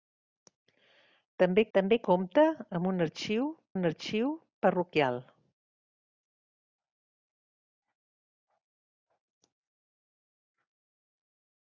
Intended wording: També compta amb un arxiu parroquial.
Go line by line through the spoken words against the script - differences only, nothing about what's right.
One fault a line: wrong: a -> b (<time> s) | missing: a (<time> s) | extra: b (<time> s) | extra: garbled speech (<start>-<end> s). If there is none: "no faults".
extra: també (1.8 s)
extra: un arxiu (3.8 s)